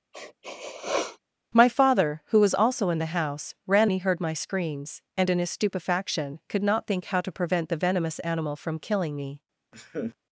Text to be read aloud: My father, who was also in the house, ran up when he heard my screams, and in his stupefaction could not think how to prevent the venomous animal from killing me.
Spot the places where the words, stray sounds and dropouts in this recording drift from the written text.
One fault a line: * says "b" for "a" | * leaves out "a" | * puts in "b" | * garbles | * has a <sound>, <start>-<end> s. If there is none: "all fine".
* has a sniff, 0.1-1.2 s
* leaves out "up when"
* has a laugh, 9.7-10.2 s